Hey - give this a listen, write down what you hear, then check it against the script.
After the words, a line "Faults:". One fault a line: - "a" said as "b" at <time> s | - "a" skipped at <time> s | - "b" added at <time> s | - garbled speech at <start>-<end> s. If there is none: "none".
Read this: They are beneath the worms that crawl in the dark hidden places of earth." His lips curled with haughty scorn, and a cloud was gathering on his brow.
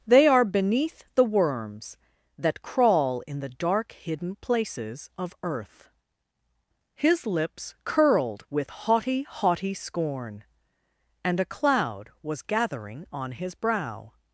They are beneath the worms that crawl in the dark hidden places of earth." His lips curled with haughty haughty scorn, and a cloud was gathering on his brow.
Faults:
- "haughty" added at 9.2 s